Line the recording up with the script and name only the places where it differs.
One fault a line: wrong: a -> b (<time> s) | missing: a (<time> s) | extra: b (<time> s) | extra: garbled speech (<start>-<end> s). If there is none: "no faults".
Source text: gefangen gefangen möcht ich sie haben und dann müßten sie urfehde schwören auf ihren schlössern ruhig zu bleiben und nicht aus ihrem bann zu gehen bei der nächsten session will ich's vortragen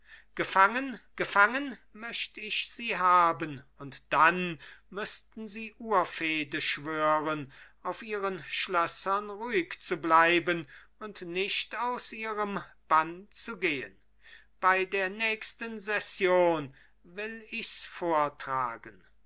no faults